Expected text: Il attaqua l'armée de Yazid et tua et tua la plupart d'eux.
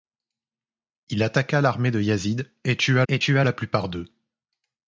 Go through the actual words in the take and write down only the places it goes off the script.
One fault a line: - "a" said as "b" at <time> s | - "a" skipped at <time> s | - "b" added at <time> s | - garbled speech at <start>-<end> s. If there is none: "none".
none